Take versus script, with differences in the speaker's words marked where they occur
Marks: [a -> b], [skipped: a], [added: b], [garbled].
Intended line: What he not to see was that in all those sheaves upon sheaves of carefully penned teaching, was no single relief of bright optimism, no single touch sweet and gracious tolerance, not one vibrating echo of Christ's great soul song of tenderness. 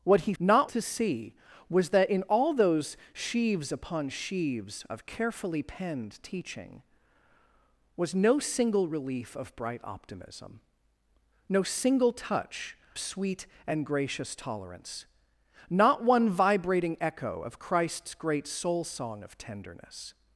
What he not to see was that in all those sheaves upon sheaves of carefully penned teaching, was no single relief of bright optimism, no single touch sweet and gracious tolerance, not one vibrating echo of Christ's great soul song of tenderness.